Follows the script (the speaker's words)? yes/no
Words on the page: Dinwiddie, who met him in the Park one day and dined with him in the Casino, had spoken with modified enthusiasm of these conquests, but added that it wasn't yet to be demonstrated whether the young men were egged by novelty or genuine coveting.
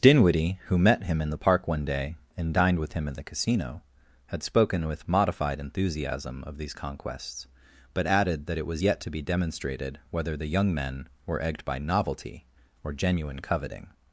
no